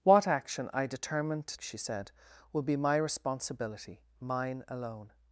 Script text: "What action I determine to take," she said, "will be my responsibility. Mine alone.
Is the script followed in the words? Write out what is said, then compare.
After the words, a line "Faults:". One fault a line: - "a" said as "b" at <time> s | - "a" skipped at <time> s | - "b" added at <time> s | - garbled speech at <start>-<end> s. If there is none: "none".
"What action I determine to," she said, "will be my responsibility. Mine alone.
Faults:
- "take" skipped at 1.6 s